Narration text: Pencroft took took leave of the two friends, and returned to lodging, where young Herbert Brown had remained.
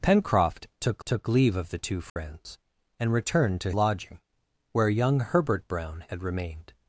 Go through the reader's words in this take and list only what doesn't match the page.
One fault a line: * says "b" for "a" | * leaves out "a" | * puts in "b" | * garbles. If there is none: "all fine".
all fine